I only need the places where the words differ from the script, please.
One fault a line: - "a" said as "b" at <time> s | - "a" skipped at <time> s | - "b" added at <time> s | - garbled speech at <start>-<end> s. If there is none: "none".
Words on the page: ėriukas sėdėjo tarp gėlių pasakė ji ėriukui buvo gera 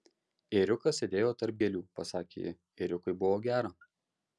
none